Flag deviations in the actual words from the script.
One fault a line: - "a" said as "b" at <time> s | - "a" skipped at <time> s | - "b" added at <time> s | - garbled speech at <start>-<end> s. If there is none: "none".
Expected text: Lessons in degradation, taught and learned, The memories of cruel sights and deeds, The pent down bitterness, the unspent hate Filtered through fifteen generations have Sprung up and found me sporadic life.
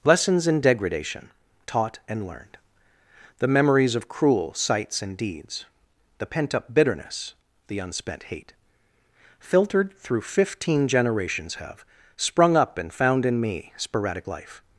- "down" said as "up" at 6.5 s
- "in" added at 13.3 s